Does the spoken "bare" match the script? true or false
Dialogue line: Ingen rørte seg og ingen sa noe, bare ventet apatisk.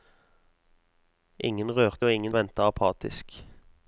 false